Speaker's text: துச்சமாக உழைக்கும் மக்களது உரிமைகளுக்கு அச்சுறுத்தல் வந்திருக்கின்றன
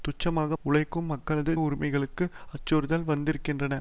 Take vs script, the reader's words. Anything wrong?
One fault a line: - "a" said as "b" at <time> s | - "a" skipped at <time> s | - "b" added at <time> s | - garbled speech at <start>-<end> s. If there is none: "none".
none